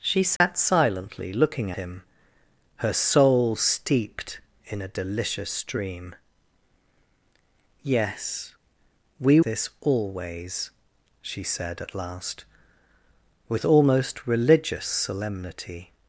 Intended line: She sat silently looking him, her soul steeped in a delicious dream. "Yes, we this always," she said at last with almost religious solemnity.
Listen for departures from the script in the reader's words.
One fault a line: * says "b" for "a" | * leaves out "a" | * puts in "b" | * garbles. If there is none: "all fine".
all fine